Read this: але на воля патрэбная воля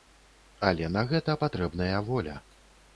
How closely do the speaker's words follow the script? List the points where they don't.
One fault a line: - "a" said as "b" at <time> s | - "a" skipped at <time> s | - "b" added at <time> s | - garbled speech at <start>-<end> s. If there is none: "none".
- "воля" said as "гэта" at 1.1 s